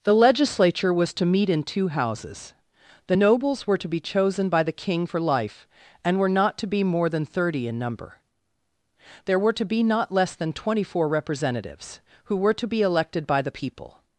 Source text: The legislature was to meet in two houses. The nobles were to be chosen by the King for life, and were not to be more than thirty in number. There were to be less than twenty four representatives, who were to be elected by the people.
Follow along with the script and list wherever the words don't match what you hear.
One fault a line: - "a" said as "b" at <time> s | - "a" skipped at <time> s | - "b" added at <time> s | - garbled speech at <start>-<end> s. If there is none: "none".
- "not" added at 9.8 s